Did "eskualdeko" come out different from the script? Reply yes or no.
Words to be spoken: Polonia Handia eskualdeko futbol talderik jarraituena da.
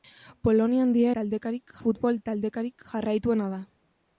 yes